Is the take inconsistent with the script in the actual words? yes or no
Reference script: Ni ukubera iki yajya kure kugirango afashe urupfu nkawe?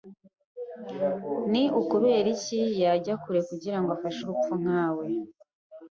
no